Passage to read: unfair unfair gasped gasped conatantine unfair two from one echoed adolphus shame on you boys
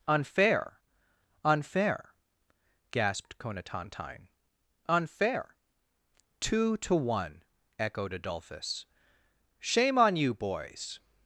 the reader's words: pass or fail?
fail